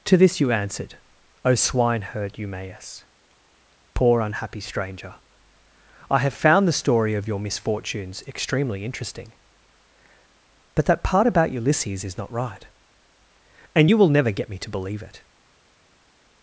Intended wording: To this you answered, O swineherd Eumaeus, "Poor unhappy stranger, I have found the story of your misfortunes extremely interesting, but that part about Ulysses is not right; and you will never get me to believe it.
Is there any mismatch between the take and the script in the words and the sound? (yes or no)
no